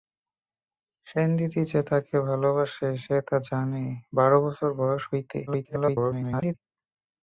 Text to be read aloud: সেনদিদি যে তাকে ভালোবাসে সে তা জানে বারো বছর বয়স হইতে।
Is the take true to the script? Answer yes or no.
no